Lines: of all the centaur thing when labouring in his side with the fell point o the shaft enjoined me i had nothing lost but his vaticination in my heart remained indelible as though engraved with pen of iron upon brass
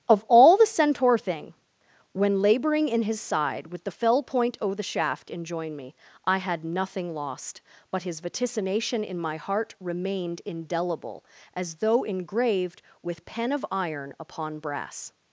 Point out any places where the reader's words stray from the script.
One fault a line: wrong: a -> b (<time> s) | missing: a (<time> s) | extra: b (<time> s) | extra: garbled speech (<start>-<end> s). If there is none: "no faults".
wrong: enjoined -> enjoin (5.3 s)